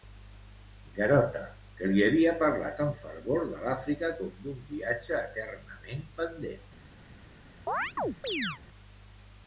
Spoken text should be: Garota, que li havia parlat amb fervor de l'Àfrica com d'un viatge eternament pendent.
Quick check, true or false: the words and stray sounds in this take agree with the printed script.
false